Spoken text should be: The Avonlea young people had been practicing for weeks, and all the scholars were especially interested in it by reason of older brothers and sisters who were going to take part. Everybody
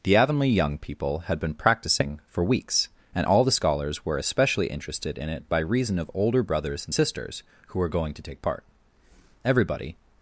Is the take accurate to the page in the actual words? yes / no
yes